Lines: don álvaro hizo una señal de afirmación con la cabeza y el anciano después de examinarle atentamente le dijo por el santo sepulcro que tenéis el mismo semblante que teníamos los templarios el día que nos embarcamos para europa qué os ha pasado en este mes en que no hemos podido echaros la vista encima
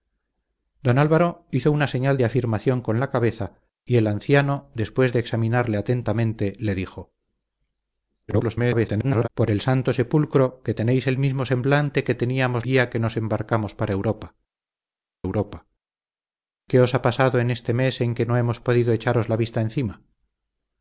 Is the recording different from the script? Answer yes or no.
yes